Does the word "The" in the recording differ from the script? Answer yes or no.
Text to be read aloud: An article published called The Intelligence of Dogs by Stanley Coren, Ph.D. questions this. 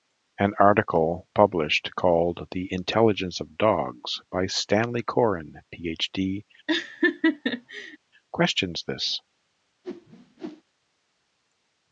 no